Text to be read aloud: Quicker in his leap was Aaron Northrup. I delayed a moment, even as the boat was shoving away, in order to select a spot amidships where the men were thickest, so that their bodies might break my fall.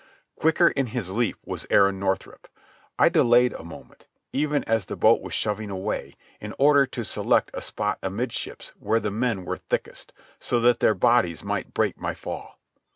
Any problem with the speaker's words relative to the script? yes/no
no